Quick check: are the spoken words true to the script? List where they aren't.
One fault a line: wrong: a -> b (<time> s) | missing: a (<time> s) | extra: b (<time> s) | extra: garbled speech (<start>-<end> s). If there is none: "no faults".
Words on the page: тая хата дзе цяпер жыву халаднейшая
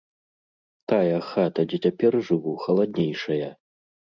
no faults